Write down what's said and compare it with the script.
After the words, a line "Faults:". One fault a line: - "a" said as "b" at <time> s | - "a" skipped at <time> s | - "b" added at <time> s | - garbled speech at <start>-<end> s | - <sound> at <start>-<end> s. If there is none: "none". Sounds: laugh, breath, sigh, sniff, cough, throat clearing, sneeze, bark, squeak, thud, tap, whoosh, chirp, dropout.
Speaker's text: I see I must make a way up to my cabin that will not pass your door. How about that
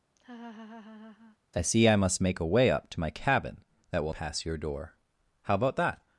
I see I must make a way up to my cabin that will pass your door. How about that
Faults:
- laugh at 0.2-1.4 s
- "not" skipped at 4.1 s